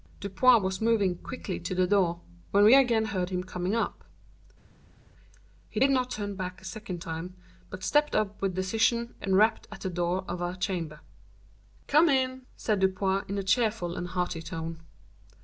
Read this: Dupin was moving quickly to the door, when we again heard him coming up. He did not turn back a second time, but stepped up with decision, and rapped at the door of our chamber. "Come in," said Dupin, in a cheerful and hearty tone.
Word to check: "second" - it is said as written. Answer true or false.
true